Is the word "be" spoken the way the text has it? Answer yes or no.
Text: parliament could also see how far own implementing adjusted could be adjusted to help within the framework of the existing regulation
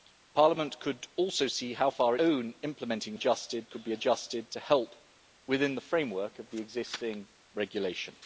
yes